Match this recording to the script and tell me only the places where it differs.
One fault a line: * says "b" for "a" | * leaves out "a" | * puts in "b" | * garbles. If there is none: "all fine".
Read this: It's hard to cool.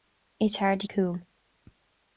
all fine